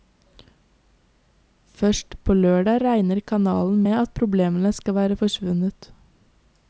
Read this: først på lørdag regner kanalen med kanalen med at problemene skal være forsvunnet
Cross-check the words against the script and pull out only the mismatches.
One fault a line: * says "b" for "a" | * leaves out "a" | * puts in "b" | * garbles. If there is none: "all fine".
* leaves out "kanalen med"